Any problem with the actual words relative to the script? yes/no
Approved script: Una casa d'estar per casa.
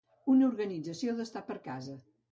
yes